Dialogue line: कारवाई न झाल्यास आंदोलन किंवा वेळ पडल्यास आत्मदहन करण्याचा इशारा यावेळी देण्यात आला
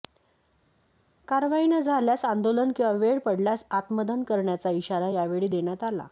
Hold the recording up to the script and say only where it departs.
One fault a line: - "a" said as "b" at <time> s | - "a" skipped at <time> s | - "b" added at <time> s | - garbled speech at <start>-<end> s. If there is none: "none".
none